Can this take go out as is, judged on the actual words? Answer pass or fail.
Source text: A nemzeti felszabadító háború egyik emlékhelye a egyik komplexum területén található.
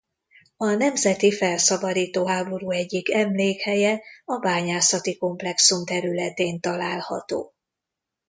fail